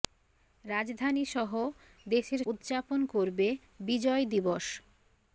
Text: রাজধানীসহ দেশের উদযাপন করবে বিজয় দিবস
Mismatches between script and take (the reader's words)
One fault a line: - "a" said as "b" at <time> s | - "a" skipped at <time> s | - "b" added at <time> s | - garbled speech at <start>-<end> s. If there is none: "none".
none